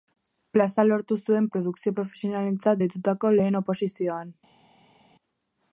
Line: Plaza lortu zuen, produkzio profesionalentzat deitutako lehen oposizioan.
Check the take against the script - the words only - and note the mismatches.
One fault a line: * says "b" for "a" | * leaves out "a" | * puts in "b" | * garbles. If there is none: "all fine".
all fine